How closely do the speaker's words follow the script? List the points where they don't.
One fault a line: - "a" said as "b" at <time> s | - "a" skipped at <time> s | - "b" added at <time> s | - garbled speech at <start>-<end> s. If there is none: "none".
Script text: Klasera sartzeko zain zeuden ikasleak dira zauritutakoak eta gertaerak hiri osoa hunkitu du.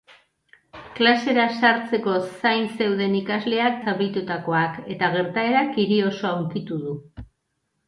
- "dira" skipped at 3.8 s